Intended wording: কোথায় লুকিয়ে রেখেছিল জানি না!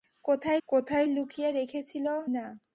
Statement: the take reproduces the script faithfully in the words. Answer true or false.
false